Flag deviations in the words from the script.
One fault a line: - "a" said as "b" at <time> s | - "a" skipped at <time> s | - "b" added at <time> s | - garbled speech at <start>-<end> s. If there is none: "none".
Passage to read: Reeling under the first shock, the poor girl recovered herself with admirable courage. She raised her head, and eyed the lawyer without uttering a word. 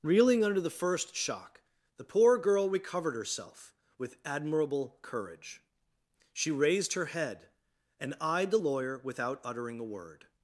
none